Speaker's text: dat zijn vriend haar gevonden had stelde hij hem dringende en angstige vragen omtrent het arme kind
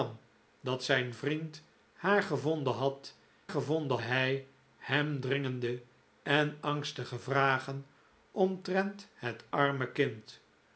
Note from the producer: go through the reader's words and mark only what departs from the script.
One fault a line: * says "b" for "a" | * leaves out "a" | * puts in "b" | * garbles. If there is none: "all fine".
* says "gevonden" for "stelde"